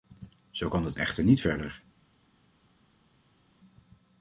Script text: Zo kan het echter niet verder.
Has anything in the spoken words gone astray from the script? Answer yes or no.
no